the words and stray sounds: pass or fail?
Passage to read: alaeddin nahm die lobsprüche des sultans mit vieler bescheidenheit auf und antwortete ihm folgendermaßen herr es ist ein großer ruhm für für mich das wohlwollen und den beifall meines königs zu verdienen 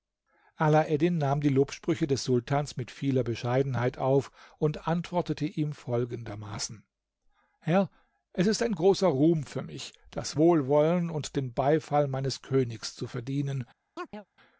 fail